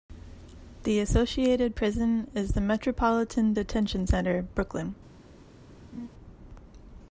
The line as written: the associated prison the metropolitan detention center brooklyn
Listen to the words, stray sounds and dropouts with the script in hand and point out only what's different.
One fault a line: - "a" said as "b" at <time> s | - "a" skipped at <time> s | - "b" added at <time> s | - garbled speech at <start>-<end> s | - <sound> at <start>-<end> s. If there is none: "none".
- "is" added at 2.3 s
- laugh at 5.9-6.1 s